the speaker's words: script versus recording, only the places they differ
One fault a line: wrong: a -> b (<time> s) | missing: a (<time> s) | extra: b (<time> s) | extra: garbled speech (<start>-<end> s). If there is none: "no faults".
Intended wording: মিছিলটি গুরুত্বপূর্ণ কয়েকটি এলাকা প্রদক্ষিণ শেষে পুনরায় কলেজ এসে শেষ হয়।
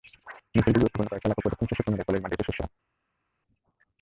extra: মাঠে (2.2 s)